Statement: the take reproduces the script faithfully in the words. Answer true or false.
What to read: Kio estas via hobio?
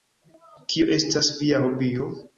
true